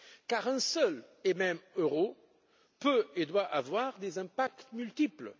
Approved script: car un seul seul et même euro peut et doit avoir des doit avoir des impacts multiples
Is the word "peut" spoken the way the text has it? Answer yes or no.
yes